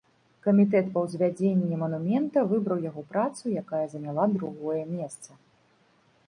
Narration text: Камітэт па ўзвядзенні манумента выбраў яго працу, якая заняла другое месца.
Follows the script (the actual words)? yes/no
yes